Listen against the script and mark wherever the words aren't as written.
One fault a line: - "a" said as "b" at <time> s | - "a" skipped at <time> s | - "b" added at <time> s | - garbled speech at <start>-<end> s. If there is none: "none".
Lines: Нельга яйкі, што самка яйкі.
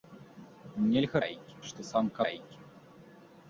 none